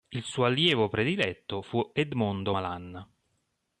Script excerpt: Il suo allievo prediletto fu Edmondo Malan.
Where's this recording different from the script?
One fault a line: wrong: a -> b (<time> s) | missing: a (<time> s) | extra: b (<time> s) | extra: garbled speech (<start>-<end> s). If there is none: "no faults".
no faults